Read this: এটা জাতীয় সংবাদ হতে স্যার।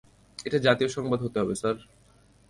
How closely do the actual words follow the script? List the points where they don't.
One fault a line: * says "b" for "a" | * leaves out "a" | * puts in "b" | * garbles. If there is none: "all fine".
* puts in "হবে"